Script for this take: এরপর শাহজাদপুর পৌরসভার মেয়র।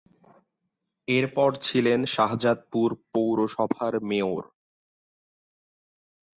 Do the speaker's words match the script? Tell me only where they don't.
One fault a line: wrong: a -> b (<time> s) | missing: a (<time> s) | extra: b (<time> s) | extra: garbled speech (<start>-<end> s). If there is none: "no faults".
extra: ছিলেন (1.6 s)